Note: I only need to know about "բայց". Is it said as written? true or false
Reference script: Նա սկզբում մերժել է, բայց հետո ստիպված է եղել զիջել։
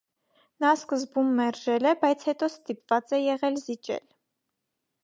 true